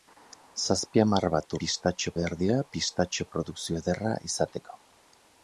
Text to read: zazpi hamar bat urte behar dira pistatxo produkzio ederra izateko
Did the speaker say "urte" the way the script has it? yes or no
no